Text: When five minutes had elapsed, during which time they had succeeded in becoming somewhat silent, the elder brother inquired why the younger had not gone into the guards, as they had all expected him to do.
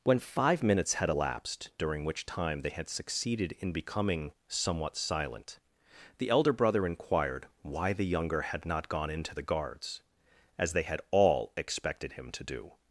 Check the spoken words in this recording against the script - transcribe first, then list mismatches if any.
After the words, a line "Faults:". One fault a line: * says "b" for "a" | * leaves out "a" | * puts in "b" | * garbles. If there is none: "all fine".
When five minutes had elapsed, during which time they had succeeded in becoming somewhat silent, the elder brother inquired why the younger had not gone into the guards, as they had all expected him to do.
Faults:
all fine